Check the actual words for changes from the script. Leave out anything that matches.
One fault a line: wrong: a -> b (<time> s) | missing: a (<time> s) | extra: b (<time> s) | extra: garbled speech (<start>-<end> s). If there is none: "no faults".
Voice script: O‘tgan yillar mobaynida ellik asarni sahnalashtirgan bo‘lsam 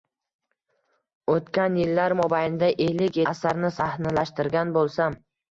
no faults